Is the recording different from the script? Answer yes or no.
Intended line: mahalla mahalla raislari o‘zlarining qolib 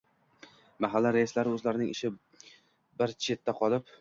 yes